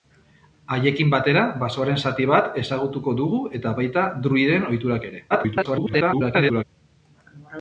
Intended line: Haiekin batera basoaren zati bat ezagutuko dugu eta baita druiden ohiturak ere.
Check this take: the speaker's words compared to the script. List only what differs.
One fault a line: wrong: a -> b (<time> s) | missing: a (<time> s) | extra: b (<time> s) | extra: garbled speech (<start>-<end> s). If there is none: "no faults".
extra: garbled speech (5.3-6.6 s)